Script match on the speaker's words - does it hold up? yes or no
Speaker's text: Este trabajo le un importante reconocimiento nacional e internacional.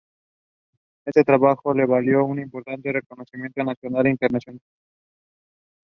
no